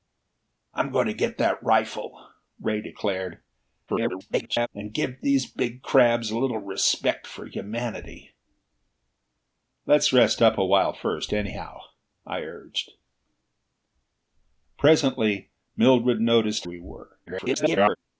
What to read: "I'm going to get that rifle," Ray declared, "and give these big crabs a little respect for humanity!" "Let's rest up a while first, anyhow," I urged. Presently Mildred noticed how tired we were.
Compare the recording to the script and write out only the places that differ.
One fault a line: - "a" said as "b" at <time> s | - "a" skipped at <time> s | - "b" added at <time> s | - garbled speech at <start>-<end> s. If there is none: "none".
- garbled speech at 3.9-4.7 s
- "how tired" skipped at 16.6 s
- garbled speech at 17.3-18.0 s